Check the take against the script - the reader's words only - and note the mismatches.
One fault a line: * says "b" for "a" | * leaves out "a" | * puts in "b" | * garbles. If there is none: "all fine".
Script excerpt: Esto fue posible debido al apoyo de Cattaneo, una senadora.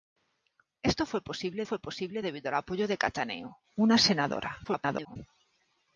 * puts in "fue posible"
* garbles